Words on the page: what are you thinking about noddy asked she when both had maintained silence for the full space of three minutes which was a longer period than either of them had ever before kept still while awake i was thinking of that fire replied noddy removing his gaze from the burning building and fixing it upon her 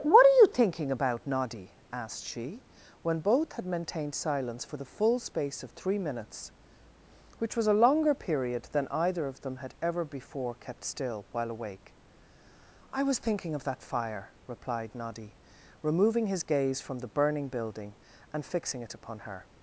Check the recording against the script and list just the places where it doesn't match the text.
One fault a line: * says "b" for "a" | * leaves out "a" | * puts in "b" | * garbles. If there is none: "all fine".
all fine